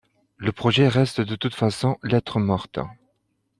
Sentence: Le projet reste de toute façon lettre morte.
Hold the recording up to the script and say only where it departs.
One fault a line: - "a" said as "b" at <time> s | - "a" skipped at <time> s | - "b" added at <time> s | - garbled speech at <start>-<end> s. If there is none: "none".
none